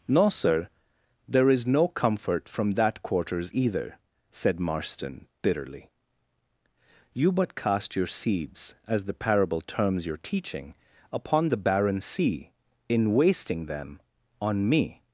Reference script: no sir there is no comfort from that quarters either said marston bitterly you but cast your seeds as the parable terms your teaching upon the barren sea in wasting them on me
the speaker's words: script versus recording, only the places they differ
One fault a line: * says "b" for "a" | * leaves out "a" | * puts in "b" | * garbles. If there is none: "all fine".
all fine